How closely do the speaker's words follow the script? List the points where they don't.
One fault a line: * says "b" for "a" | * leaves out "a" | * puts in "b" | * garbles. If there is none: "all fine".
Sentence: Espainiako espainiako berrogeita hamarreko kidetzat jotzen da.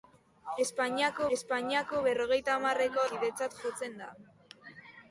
all fine